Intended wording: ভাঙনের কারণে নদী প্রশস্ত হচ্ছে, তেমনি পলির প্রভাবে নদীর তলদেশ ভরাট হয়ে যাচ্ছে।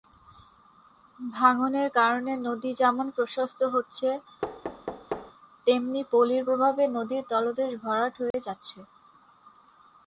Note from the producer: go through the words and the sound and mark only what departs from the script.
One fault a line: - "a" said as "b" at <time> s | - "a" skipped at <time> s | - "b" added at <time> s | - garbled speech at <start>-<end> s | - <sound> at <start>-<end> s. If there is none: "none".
- "যেমন" added at 2.7 s
- thud at 4.4-5.3 s
- dropout at 8.3-8.3 s